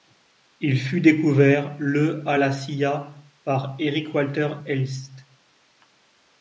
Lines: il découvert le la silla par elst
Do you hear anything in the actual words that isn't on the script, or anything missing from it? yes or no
yes